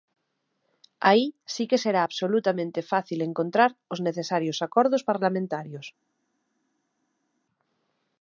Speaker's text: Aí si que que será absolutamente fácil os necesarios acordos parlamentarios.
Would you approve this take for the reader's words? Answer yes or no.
no